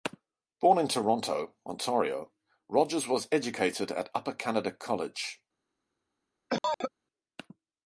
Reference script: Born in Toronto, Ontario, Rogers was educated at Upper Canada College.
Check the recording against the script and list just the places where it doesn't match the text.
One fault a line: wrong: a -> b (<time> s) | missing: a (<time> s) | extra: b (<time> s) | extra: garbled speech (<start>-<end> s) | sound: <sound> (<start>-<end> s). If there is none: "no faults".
sound: cough (6.5-6.9 s)